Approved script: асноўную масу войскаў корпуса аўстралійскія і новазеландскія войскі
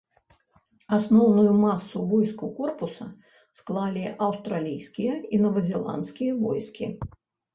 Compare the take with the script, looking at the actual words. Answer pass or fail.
fail